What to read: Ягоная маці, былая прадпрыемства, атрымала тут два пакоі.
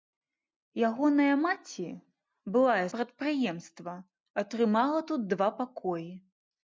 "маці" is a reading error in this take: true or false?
false